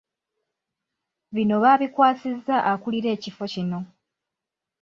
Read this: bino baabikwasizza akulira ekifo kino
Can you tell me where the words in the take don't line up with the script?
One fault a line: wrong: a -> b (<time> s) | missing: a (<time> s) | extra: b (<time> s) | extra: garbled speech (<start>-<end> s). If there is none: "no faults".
no faults